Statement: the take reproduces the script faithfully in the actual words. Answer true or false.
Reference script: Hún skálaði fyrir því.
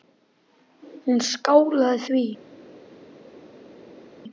false